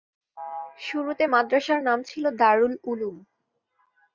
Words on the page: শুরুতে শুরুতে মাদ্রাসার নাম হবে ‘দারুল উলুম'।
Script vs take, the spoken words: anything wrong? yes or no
yes